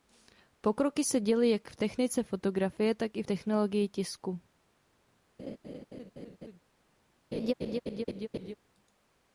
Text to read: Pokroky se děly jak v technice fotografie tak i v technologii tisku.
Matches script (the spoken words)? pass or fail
pass